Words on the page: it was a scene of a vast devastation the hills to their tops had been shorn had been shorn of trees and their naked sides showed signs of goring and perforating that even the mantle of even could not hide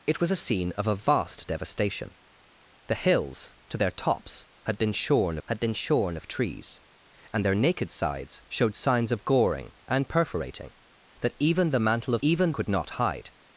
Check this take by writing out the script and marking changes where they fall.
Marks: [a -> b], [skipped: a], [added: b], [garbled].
it was a scene of a vast devastation the hills to their tops had been shorn had been shorn of trees and their naked sides showed signs of goring and perforating that even the mantle of even could not hide